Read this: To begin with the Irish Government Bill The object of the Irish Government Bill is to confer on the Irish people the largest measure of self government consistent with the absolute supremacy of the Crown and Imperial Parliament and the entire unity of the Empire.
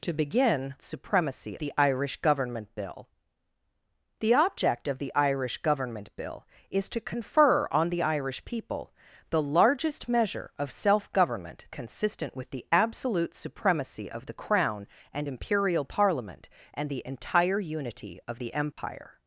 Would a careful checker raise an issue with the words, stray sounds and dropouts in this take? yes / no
yes